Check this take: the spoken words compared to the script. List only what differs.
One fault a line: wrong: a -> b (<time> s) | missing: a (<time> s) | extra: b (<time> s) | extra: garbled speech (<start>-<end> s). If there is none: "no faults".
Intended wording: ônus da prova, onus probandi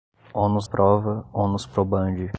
missing: da (0.7 s)